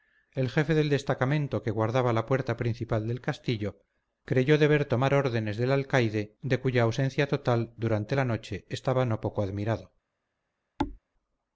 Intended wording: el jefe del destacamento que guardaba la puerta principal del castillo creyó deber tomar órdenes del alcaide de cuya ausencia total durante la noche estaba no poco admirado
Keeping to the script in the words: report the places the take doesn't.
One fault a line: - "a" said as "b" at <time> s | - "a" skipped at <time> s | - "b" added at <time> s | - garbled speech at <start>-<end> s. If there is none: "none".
none